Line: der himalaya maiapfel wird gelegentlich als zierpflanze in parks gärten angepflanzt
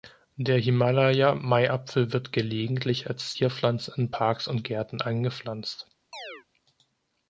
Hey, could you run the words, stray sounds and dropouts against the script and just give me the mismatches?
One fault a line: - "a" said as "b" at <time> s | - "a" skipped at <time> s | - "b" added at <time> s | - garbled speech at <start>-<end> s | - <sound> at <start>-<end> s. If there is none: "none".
- "und" added at 4.5 s
- chirp at 6.1-6.5 s